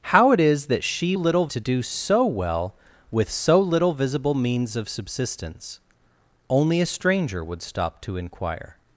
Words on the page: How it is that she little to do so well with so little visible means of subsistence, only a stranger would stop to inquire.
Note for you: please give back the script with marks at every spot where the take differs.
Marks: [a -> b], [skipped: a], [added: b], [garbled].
How it is that she little to do so well with so little visible means of subsistence, only a stranger would stop to inquire.